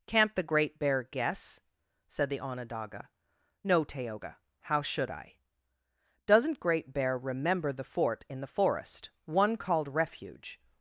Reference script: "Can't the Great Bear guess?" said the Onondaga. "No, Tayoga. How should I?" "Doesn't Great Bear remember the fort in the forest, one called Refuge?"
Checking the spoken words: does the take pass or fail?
pass